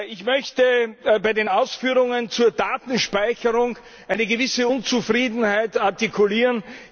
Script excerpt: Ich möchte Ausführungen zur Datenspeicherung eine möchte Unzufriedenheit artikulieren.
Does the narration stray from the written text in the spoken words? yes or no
yes